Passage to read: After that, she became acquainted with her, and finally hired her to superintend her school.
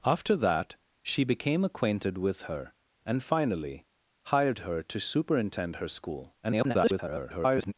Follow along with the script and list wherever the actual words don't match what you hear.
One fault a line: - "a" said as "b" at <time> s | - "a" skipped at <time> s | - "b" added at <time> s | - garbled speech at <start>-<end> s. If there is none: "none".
- garbled speech at 6.4-7.7 s